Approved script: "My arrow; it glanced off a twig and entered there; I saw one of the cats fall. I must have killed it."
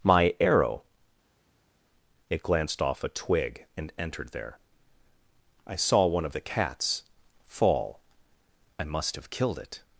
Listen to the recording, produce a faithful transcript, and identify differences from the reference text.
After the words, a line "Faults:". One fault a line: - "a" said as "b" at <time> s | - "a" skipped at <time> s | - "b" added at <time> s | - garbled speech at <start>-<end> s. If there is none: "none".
"My arrow; it glanced off a twig and entered there; I saw one of the cats fall. I must have killed it."
Faults:
none